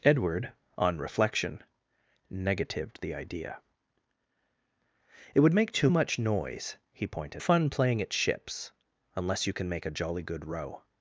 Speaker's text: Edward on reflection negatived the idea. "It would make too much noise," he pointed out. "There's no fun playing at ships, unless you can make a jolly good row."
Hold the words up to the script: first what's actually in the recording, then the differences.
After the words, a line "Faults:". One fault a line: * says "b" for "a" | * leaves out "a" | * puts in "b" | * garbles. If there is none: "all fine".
Edward on reflection negatived the idea. "It would make too much noise," he pointed fun playing at ships, unless you can make a jolly good row."
Faults:
* leaves out "out There's no"